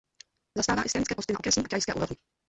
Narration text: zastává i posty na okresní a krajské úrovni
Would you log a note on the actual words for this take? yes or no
yes